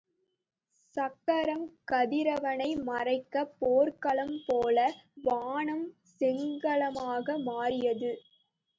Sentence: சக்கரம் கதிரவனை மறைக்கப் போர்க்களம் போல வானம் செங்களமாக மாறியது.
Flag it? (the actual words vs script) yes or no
no